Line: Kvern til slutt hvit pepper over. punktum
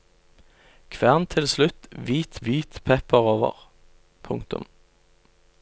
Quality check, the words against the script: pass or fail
fail